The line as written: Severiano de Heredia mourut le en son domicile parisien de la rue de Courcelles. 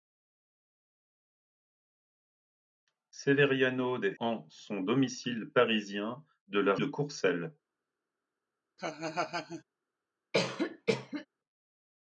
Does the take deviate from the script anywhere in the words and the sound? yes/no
yes